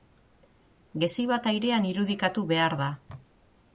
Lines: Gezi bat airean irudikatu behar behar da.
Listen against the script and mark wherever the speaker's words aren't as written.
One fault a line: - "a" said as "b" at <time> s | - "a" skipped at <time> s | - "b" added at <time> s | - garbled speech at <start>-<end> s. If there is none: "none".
- "behar" skipped at 2.8 s